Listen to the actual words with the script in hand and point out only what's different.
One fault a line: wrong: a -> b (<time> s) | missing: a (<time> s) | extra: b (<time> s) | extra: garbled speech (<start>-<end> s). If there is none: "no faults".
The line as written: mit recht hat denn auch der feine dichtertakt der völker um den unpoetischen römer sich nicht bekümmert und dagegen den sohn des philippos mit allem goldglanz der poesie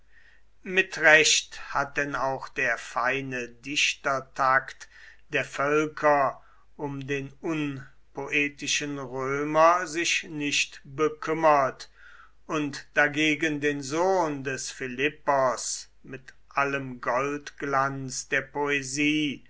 no faults